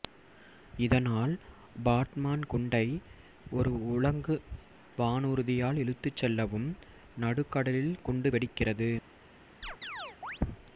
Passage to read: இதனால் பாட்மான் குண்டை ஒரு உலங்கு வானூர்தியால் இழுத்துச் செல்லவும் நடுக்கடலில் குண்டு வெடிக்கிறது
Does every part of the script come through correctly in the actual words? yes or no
yes